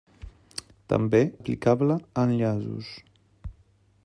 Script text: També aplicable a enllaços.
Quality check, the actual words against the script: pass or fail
pass